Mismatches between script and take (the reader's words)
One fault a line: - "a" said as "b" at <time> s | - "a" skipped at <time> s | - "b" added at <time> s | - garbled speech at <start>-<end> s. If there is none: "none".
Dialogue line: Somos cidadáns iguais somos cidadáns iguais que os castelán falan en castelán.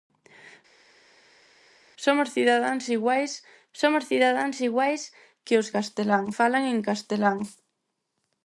none